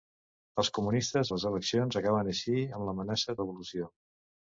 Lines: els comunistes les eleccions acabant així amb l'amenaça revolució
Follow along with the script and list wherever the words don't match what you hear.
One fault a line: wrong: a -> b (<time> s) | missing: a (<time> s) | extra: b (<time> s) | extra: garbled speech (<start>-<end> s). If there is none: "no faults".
no faults